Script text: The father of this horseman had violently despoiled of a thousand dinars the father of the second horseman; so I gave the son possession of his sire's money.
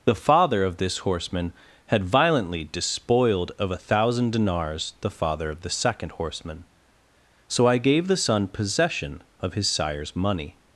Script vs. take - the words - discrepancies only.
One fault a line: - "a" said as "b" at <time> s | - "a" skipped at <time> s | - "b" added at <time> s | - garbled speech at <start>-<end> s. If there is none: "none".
none